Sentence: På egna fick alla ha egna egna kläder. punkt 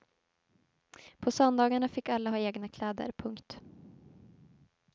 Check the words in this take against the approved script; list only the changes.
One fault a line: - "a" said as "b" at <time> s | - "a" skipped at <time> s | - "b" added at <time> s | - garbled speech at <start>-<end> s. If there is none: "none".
- "egna" said as "söndagarna" at 1.3 s
- "egna" skipped at 2.7 s